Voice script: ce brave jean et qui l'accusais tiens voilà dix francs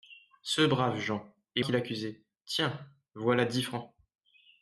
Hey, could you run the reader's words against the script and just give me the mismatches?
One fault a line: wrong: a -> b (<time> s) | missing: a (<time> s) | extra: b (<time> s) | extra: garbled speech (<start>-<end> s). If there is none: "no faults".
no faults